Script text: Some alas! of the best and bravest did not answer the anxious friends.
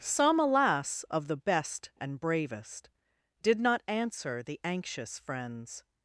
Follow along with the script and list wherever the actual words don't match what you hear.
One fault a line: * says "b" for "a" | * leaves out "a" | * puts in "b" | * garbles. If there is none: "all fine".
all fine